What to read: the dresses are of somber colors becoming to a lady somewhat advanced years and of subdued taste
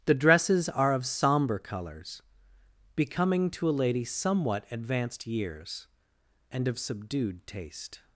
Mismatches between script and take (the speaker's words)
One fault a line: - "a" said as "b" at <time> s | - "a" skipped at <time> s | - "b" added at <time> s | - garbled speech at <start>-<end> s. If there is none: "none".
none